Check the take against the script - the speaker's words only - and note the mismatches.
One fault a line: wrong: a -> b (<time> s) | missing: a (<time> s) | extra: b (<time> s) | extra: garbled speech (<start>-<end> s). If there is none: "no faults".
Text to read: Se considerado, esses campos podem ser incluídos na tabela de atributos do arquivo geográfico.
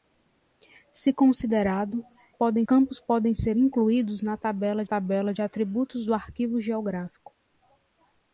wrong: esses -> podem (2.3 s)
extra: tabela (4.8 s)